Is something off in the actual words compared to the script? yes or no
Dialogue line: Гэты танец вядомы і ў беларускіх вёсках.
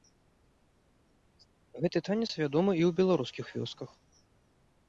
no